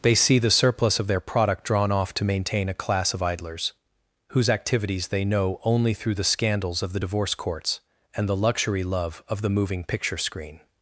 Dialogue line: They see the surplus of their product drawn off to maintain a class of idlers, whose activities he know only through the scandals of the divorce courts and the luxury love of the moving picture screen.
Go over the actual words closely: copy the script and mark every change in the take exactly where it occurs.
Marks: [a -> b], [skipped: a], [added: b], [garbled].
They see the surplus of their product drawn off to maintain a class of idlers, whose activities [he -> they] know only through the scandals of the divorce courts and the luxury love of the moving picture screen.